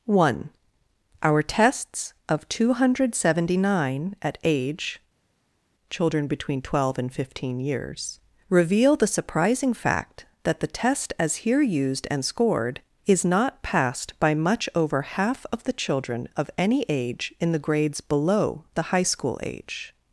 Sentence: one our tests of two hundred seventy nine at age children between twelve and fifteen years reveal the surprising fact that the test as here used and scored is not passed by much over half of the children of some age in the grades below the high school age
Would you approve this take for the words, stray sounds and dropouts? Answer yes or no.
no